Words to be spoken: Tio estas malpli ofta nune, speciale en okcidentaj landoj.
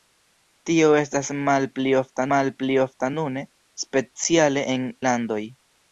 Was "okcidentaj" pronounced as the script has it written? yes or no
no